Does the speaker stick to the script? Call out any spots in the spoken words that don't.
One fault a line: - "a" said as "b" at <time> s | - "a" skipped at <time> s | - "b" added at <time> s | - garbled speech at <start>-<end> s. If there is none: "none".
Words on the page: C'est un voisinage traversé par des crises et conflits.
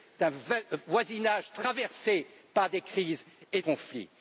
none